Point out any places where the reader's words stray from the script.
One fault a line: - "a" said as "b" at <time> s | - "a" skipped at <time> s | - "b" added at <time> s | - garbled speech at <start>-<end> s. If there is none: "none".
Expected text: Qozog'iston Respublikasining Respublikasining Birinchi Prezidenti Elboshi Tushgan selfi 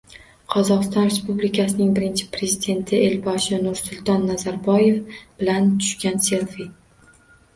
- "Respublikasining" skipped at 1.9 s
- "Nursulton Nazarboyev bilan" added at 3.6 s